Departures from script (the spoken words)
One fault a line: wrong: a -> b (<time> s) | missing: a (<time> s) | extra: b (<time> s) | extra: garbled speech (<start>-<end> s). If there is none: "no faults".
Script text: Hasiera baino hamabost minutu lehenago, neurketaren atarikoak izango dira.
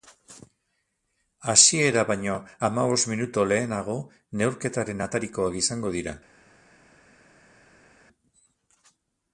no faults